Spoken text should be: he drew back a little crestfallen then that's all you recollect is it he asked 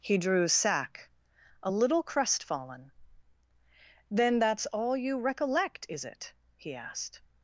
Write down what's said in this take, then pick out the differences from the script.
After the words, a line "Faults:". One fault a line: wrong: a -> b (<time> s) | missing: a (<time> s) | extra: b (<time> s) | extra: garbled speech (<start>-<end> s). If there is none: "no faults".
he drew sack a little crestfallen then that's all you recollect is it he asked
Faults:
wrong: back -> sack (0.5 s)